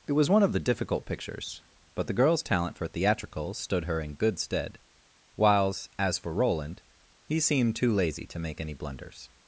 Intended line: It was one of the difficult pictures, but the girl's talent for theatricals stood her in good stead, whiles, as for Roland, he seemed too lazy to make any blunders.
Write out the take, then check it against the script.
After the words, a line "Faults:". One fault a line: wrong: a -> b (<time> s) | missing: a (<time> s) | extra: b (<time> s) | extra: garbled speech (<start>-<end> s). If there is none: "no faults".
It was one of the difficult pictures, but the girl's talent for theatricals stood her in good stead, whiles, as for Roland, he seemed too lazy to make any blunders.
Faults:
no faults